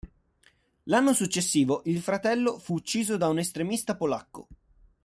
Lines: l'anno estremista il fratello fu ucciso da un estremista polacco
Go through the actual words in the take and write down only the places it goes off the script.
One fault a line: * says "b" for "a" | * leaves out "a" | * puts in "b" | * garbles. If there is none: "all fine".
* says "successivo" for "estremista"